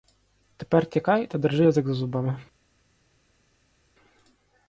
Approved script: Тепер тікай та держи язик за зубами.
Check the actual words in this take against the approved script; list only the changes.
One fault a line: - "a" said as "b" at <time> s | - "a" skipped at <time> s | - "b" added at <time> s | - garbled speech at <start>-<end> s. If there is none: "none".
none